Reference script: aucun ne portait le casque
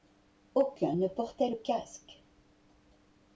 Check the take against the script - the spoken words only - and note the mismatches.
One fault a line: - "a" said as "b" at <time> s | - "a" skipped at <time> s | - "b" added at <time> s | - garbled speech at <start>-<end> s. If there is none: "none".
none